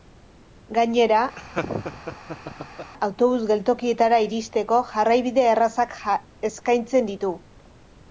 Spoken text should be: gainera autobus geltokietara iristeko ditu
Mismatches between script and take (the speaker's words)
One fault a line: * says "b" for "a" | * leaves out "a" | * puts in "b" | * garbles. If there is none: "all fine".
* puts in "jarraibide errazak eskaintzen"